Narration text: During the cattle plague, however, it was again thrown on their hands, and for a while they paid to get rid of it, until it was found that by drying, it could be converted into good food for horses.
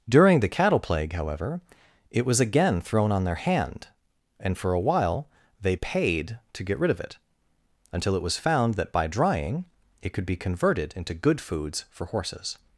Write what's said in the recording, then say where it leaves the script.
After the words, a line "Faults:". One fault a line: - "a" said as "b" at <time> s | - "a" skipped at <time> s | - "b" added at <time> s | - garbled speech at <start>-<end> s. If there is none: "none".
During the cattle plague, however, it was again thrown on their hand, and for a while they paid to get rid of it, until it was found that by drying, it could be converted into good foods for horses.
Faults:
- "hands" said as "hand" at 3.4 s
- "food" said as "foods" at 11.4 s